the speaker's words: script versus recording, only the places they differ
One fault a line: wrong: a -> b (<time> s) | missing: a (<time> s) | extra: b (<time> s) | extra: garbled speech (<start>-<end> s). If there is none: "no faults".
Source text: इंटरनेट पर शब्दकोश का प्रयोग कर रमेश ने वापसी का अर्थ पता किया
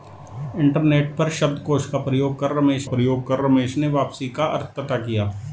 extra: प्रयोग कर रमेश (2.8 s)